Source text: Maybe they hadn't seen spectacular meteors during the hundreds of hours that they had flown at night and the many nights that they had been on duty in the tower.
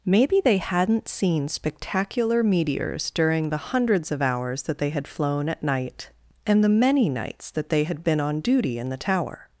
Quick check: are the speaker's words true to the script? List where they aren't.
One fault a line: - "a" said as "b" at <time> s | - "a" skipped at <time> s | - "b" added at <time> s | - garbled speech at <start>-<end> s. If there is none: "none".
none